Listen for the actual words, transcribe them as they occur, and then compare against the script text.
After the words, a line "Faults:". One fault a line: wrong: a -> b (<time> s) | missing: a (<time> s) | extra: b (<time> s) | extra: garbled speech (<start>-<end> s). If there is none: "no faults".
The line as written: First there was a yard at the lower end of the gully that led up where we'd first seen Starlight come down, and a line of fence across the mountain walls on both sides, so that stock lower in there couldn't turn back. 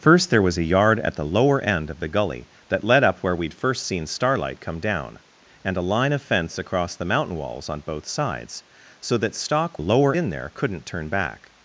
First there was a yard at the lower end of the gully that led up where we'd first seen Starlight come down, and a line of fence across the mountain walls on both sides, so that stock lower in there couldn't turn back.
Faults:
no faults